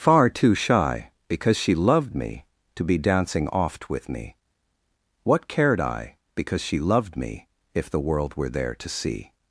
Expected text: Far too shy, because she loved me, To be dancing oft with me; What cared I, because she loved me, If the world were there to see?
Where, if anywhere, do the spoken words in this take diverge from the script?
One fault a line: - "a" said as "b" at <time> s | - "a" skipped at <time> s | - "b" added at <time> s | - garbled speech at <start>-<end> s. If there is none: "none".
none